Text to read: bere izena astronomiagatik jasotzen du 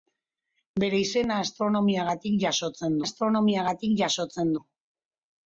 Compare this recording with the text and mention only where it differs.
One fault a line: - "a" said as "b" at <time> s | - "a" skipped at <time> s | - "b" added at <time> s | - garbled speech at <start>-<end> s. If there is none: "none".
- "astronomiagatik jasotzen" added at 3.0 s